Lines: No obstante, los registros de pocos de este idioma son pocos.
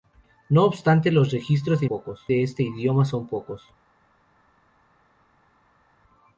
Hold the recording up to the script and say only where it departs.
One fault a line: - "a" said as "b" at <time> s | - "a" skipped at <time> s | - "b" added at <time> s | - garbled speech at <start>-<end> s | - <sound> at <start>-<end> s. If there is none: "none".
none